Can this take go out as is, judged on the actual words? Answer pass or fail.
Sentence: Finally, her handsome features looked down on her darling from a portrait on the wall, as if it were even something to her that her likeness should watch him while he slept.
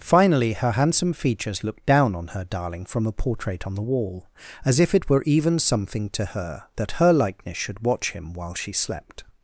fail